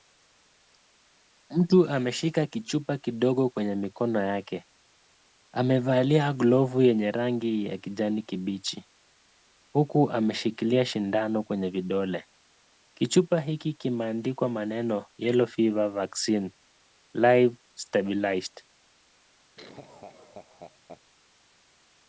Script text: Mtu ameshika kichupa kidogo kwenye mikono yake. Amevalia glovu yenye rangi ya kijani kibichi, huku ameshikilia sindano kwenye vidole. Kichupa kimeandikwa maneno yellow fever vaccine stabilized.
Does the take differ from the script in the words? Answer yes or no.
yes